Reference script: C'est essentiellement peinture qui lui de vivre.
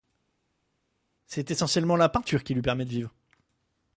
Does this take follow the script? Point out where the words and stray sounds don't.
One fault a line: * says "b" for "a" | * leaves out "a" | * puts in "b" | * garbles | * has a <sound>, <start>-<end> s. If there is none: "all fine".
* puts in "la"
* puts in "permet"